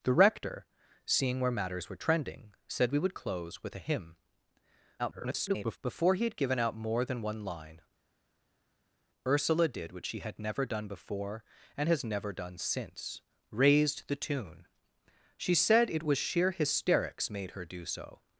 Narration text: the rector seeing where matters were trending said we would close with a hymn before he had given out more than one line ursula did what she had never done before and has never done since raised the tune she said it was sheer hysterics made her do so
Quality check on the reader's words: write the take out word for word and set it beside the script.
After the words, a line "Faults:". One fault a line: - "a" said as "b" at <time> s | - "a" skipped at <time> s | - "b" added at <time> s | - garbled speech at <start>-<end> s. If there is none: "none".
the rector seeing where matters were trending said we would close with a hymn [garbled] before he had given out more than one line ursula did what she had never done before and has never done since raised the tune she said it was sheer hysterics made her do so
Faults:
- garbled speech at 5.0-5.8 s